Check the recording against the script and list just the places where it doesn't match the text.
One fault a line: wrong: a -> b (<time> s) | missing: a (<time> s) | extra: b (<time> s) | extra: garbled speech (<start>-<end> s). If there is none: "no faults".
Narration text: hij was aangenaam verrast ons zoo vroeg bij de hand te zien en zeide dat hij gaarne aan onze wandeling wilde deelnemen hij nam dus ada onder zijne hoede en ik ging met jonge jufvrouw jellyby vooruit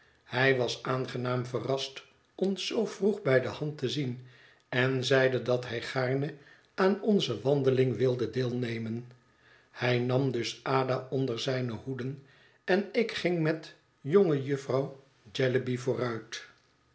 no faults